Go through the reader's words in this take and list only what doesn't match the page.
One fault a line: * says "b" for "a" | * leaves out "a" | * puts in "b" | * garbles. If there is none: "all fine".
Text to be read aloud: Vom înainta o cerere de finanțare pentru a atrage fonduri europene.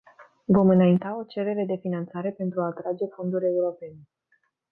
all fine